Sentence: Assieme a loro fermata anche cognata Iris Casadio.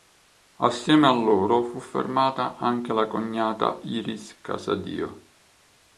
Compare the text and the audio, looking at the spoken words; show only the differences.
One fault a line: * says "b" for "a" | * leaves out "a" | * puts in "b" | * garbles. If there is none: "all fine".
* puts in "fu"
* puts in "la"